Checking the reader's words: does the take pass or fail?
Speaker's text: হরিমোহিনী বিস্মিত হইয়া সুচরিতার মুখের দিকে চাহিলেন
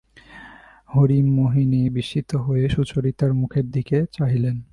pass